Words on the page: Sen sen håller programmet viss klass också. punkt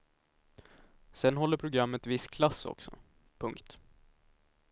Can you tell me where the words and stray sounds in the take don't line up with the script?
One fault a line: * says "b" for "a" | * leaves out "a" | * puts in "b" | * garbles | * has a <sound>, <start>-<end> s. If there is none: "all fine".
* leaves out "sen"